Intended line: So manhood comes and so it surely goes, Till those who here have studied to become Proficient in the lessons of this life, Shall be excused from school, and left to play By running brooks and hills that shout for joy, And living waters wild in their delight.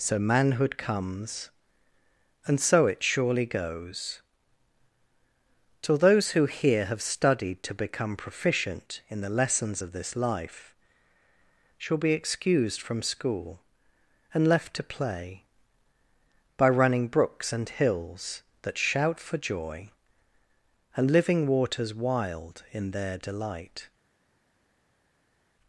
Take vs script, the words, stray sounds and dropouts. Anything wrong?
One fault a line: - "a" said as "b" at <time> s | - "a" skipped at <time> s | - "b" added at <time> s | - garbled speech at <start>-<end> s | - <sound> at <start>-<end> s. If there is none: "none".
none